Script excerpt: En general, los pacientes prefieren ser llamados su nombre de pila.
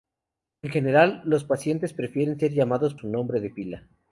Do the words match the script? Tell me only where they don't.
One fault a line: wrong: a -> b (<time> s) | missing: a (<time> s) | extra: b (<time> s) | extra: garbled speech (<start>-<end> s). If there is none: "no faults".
no faults